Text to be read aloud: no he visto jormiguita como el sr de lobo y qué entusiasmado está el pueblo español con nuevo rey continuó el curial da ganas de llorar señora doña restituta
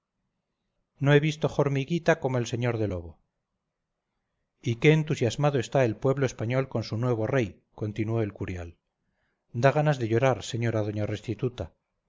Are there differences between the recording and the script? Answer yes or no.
yes